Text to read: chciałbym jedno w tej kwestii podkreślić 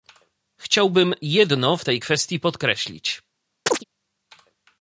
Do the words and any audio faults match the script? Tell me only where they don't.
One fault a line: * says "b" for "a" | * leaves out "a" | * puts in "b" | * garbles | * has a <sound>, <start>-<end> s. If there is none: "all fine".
* has a chirp, 3.7-3.8 s